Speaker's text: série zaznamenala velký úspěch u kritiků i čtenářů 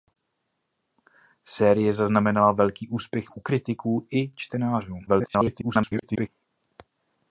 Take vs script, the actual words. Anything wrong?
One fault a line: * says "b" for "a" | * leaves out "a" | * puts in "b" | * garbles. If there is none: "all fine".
* garbles